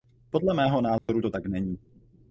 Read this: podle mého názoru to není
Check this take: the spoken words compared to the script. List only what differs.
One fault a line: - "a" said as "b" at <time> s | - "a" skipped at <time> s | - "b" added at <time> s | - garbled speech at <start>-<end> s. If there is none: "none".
- "tak" added at 1.3 s